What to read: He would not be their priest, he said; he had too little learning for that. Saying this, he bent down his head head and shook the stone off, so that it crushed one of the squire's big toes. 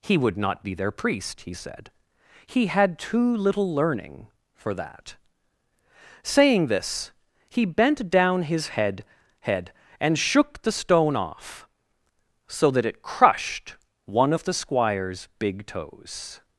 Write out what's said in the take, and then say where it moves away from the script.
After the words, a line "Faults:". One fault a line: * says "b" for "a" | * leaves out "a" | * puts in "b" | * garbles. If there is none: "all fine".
He would not be their priest, he said; he had too little learning for that. Saying this, he bent down his head head and shook the stone off, so that it crushed one of the squire's big toes.
Faults:
all fine